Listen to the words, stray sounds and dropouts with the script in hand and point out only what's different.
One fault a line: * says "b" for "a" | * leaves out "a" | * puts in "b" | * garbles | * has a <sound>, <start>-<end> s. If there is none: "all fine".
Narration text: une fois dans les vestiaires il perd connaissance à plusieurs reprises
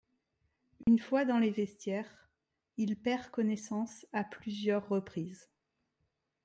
* has a dropout, 0.8-0.9 s